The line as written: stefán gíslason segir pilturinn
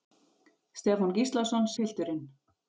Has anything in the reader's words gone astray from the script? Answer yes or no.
yes